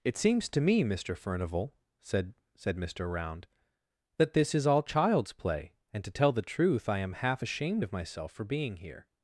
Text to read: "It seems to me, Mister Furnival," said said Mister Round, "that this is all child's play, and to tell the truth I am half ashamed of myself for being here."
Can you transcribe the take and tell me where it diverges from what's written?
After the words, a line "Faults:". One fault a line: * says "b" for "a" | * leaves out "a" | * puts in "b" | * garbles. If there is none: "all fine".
"It seems to me, Mister Furnival," said said Mister Round, "that this is all child's play, and to tell the truth I am half ashamed of myself for being here."
Faults:
all fine